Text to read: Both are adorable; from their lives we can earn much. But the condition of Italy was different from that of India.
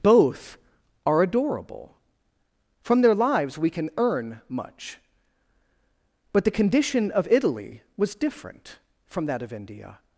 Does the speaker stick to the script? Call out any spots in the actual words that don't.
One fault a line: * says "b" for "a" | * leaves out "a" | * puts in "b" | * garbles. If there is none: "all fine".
all fine